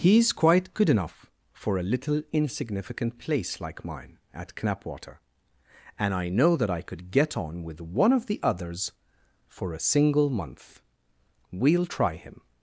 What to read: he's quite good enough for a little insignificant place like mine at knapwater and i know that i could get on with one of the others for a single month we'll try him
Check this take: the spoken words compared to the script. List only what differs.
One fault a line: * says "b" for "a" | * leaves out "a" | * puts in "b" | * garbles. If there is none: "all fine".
all fine